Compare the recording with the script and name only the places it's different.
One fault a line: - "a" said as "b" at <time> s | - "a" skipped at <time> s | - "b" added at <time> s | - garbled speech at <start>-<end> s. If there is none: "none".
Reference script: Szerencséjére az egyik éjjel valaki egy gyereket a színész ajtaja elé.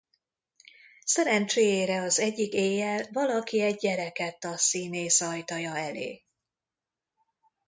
none